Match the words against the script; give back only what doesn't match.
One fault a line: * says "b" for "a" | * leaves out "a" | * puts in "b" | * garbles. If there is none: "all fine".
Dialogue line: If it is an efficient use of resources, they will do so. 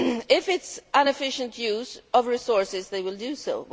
all fine